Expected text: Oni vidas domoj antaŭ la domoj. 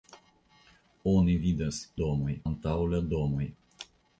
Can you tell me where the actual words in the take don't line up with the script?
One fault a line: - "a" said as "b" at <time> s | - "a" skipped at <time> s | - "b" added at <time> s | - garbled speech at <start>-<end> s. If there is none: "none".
none